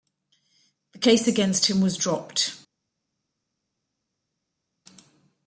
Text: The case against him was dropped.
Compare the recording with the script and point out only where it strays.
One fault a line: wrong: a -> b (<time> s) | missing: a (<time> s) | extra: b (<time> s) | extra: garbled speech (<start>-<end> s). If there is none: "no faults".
no faults